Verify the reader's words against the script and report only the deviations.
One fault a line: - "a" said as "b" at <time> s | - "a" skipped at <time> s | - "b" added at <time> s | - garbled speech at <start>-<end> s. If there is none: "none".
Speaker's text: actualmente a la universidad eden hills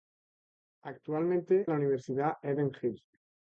none